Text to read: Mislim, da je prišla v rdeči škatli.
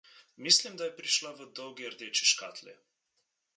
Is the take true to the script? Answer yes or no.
no